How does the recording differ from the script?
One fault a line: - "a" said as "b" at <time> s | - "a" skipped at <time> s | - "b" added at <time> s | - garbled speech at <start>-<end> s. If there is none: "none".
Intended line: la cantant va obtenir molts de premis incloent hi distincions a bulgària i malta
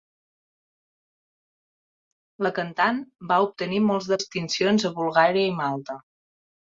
- "premis incloent hi" skipped at 4.2 s